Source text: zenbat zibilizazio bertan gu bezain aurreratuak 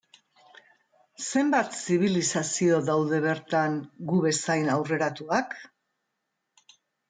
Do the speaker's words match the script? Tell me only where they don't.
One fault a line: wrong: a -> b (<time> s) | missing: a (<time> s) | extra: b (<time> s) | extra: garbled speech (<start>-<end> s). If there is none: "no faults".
extra: daude (2.9 s)